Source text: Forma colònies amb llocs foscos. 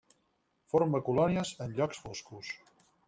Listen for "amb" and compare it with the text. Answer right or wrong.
wrong